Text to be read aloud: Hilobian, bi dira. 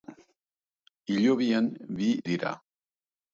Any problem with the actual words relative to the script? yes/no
no